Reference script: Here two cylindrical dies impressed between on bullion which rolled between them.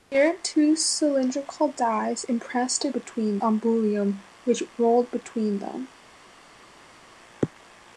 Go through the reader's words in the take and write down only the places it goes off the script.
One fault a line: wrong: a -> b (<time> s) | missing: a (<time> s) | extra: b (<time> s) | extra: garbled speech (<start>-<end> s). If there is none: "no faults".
no faults